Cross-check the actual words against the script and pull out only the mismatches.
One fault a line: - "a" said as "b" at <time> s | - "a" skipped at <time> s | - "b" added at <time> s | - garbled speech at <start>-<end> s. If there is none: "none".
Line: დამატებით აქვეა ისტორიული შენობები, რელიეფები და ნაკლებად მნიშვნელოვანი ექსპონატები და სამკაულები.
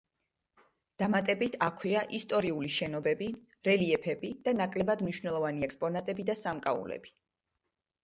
none